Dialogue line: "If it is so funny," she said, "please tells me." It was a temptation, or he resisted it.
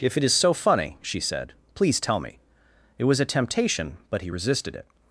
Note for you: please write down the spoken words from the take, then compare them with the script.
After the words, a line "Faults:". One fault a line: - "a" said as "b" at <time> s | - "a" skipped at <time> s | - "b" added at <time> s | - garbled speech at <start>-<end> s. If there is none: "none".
"If it is so funny," she said, "please tell me." It was a temptation, but he resisted it.
Faults:
- "tells" said as "tell" at 2.0 s
- "or" said as "but" at 4.1 s